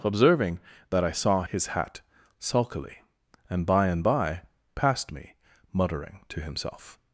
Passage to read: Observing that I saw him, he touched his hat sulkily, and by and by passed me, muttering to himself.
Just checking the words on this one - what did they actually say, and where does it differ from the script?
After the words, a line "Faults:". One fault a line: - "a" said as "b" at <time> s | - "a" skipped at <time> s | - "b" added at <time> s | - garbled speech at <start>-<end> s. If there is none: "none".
Observing that I saw his hat sulkily, and by and by passed me, muttering to himself.
Faults:
- "him he touched" skipped at 1.4 s